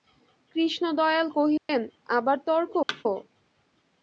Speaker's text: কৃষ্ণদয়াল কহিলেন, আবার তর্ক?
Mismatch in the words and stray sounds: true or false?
true